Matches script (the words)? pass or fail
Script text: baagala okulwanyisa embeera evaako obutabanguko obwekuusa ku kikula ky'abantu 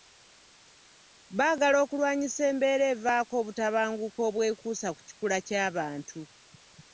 pass